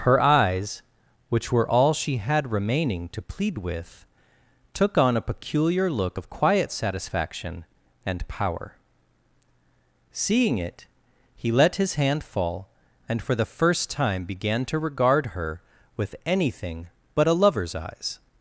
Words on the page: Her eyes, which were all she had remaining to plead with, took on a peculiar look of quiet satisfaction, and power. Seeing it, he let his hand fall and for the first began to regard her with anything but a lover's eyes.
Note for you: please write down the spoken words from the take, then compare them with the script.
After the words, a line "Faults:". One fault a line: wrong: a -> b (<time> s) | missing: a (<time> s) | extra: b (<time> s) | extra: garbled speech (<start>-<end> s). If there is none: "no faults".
Her eyes, which were all she had remaining to plead with, took on a peculiar look of quiet satisfaction, and power. Seeing it, he let his hand fall and for the first time began to regard her with anything but a lover's eyes.
Faults:
extra: time (13.9 s)